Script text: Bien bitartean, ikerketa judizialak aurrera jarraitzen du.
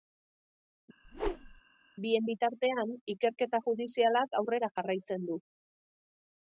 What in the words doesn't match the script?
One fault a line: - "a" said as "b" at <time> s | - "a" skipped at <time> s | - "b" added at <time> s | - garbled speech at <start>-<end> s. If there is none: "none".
none